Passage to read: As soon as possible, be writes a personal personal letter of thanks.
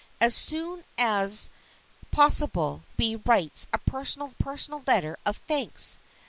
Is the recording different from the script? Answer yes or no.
no